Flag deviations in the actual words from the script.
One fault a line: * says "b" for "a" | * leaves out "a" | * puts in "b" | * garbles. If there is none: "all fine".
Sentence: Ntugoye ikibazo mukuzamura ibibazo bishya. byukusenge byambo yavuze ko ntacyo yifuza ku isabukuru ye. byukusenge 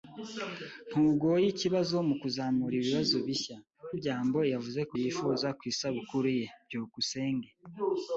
* leaves out "byukusenge"
* leaves out "ntacyo"